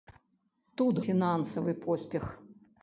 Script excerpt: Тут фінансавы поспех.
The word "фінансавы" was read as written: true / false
true